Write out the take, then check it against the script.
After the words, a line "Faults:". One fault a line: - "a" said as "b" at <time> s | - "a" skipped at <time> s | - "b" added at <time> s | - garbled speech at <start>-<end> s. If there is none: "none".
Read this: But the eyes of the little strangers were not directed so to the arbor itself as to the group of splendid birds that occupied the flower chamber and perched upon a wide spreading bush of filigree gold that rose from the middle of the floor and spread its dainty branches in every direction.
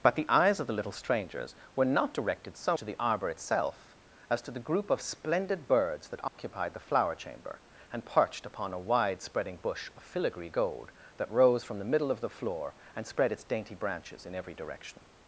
But the eyes of the little strangers were not directed so to the arbor itself as to the group of splendid birds that occupied the flower chamber and perched upon a wide spreading bush of filigree gold that rose from the middle of the floor and spread its dainty branches in every direction.
Faults:
none